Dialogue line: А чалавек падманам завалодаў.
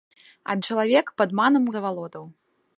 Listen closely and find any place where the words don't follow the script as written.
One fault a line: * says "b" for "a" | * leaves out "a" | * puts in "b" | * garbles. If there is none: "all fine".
all fine